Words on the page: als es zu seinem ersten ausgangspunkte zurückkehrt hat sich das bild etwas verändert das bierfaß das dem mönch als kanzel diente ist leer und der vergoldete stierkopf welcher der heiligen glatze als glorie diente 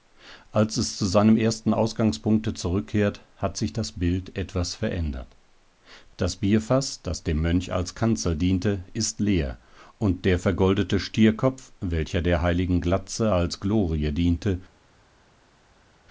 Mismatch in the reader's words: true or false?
false